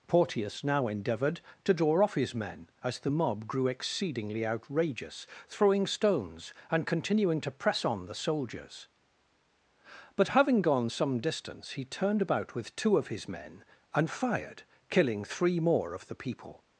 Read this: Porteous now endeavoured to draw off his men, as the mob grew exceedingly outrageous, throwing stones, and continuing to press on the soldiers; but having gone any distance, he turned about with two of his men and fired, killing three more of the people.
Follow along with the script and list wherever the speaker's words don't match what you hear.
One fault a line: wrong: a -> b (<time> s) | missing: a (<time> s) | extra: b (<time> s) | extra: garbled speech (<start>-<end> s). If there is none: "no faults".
wrong: any -> some (10.9 s)